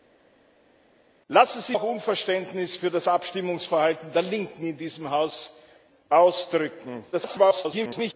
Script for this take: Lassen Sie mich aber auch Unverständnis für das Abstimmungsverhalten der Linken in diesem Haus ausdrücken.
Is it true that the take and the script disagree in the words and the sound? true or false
true